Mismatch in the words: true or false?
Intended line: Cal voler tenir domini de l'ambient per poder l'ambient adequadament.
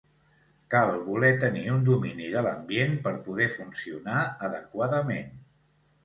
true